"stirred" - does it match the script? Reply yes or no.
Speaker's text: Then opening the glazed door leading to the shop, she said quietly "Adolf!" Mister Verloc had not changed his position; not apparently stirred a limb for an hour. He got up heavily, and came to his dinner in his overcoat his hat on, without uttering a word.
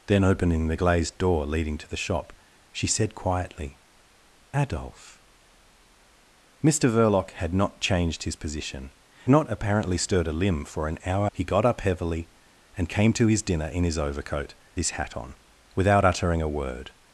yes